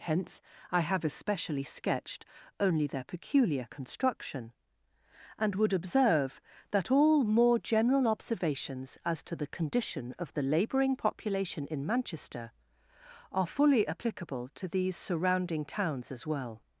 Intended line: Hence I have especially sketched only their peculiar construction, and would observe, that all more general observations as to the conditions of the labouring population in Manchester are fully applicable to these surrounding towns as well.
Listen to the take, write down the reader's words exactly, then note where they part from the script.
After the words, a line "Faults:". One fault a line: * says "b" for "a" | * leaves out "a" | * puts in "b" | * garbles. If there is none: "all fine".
Hence I have especially sketched only their peculiar construction, and would observe, that all more general observations as to the condition of the labouring population in Manchester are fully applicable to these surrounding towns as well.
Faults:
* says "condition" for "conditions"